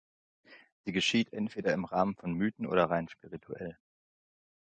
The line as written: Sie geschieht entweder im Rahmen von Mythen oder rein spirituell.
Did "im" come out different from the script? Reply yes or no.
no